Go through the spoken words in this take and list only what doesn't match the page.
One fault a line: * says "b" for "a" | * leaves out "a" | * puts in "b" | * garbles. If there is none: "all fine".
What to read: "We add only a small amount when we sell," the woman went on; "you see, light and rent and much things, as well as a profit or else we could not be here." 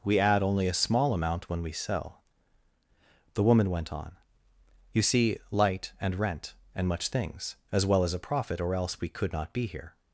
all fine